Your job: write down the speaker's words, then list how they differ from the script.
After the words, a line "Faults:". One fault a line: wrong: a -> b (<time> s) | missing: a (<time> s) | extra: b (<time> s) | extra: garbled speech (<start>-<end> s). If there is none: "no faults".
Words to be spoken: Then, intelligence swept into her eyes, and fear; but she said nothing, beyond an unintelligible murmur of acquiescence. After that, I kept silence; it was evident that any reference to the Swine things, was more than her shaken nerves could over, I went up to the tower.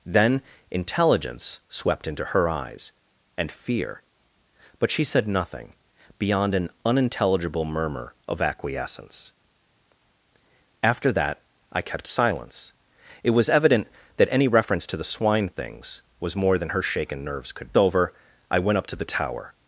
Then, intelligence swept into her eyes, and fear; but she said nothing, beyond an unintelligible murmur of acquiescence. After that, I kept silence; it was evident that any reference to the Swine things, was more than her shaken nerves could over, I went up to the tower.
Faults:
no faults